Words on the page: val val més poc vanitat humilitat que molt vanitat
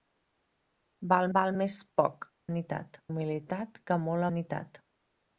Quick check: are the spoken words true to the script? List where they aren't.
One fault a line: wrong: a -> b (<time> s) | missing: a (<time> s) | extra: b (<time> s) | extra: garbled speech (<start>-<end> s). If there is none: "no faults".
no faults